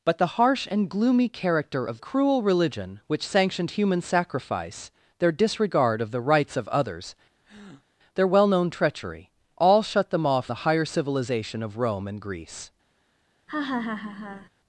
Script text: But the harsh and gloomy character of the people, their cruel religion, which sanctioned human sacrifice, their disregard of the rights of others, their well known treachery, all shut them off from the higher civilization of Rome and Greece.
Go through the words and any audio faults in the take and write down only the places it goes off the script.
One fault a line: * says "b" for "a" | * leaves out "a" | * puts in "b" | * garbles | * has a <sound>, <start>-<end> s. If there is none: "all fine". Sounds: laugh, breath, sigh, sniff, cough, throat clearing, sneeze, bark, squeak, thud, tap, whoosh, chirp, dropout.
* leaves out "the people their"
* has a breath, 7.4-7.9 s
* leaves out "from"
* has a laugh, 13.5-14.5 s